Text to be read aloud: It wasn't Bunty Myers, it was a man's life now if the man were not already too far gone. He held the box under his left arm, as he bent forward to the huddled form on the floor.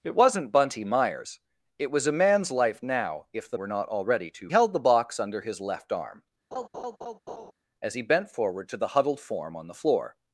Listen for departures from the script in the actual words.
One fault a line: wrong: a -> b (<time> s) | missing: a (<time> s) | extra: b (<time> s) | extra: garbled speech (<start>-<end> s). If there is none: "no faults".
missing: man (3.6 s)
missing: far gone He (4.5 s)